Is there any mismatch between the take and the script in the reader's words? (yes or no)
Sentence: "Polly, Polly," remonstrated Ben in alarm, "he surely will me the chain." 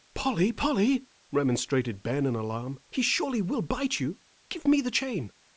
yes